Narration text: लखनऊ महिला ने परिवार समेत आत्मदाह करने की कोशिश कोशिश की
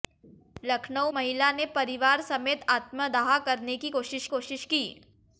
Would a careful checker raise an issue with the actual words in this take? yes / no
no